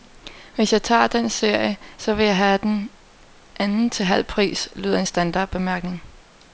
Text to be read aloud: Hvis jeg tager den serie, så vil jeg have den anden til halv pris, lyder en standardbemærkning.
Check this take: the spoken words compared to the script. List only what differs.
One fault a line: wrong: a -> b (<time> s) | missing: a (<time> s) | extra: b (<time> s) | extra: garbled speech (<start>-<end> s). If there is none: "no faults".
no faults